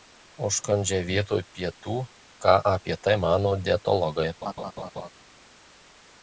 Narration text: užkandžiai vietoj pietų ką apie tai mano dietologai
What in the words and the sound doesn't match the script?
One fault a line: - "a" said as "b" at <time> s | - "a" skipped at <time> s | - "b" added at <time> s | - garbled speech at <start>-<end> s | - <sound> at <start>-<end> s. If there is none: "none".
- laugh at 4.4-5.1 s